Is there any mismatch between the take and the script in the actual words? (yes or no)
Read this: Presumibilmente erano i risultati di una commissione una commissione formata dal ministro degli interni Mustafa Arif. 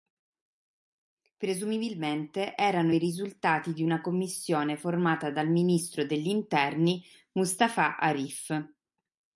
yes